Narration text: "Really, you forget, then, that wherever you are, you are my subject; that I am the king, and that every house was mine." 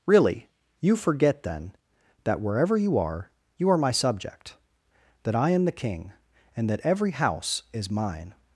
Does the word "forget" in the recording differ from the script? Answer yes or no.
no